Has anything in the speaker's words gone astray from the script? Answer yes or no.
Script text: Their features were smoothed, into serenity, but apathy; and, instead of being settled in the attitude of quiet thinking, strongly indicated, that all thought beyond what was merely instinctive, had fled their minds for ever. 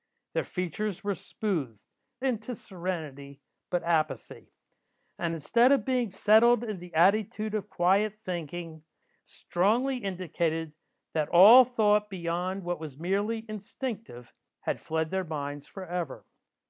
no